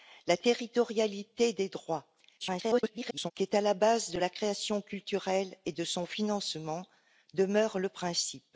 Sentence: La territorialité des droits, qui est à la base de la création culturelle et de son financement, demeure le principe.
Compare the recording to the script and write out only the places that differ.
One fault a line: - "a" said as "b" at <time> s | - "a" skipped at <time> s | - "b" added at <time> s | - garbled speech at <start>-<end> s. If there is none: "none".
- garbled speech at 2.4-3.3 s